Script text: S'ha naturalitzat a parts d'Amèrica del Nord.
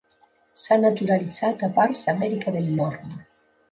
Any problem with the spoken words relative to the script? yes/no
no